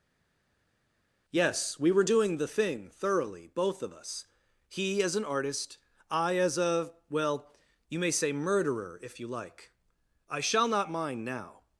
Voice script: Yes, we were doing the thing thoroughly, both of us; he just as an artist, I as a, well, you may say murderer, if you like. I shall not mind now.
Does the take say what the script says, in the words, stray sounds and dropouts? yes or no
no